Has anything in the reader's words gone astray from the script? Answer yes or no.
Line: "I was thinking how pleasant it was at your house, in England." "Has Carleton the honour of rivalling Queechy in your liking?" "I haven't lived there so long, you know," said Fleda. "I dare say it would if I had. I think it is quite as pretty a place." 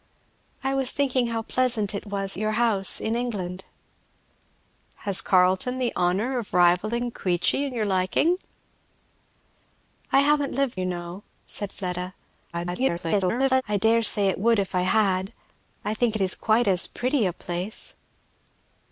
yes